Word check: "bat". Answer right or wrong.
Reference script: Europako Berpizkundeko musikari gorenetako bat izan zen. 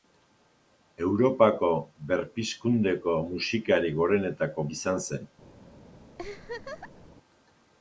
wrong